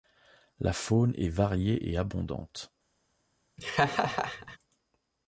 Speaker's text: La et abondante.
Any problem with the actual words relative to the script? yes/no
yes